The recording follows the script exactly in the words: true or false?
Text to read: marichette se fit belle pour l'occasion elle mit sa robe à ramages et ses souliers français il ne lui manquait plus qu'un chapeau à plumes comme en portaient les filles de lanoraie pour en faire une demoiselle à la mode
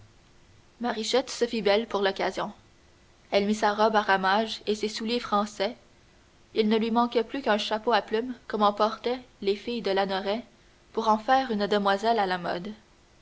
true